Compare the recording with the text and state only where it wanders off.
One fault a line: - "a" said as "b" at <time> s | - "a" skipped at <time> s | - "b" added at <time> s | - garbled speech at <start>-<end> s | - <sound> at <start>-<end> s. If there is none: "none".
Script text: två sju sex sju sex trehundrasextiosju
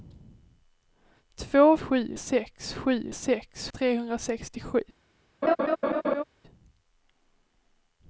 - laugh at 5.4-6.2 s